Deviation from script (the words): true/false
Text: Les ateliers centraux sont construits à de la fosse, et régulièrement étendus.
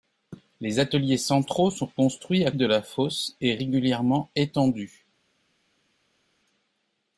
false